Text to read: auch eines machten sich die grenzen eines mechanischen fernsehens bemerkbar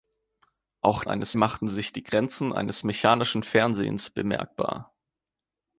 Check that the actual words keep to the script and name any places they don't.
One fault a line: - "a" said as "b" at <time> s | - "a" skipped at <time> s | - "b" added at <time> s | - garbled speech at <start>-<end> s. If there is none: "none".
none